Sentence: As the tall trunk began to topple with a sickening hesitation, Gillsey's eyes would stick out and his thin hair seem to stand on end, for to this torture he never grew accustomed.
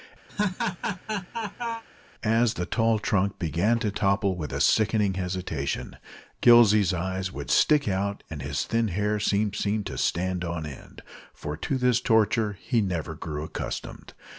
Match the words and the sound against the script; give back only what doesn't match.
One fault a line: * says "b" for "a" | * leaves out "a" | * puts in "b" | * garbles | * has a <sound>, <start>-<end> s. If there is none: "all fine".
* has a laugh, 0.3-1.8 s
* puts in "seem"